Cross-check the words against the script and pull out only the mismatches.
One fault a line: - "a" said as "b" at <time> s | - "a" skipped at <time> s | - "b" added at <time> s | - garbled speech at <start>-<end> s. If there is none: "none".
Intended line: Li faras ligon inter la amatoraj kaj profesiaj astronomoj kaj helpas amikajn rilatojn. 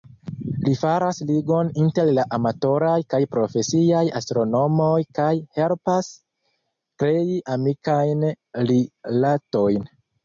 - "krei" added at 7.0 s